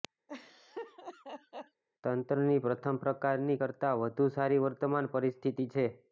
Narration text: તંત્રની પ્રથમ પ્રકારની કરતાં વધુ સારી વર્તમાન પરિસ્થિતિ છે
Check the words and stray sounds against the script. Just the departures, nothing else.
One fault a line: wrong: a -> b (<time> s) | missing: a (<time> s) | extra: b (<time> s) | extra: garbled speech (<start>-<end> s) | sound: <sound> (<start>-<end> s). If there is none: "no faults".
sound: laugh (0.3-1.8 s)